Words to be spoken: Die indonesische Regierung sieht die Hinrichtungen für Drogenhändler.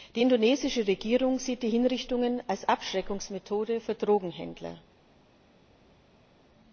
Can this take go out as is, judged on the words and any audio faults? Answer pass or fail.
fail